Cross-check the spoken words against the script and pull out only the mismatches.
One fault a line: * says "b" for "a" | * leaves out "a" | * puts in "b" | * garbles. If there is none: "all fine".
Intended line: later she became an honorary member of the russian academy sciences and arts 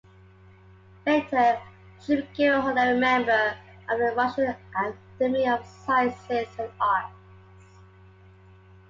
* puts in "of"